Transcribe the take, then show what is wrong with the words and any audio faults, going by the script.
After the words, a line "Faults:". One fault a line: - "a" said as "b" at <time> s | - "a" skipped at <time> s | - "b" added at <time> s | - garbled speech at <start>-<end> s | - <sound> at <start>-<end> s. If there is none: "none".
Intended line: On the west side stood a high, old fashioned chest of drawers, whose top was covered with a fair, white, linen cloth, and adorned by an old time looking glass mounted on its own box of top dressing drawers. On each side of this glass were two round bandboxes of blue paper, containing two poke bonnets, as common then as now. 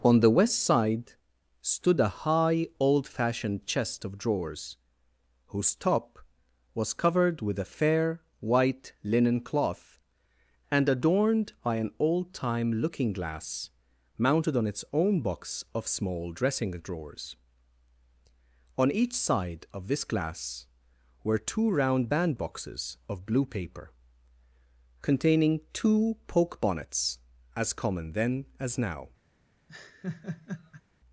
On the west side stood a high, old fashioned chest of drawers, whose top was covered with a fair, white, linen cloth, and adorned by an old time looking glass mounted on its own box of small dressing drawers. On each side of this glass were two round bandboxes of blue paper, containing two poke bonnets, as common then as now.
Faults:
- "top" said as "small" at 15.9 s
- laugh at 29.7-30.8 s